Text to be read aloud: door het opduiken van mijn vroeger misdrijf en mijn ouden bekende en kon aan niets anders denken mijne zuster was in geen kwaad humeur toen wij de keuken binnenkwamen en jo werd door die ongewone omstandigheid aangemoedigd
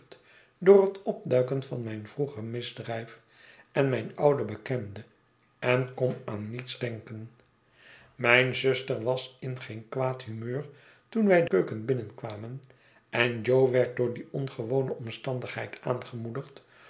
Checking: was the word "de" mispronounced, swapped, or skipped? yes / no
yes